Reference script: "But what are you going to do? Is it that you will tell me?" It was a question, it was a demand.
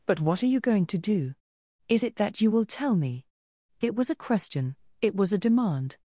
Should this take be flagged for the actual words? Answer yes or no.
no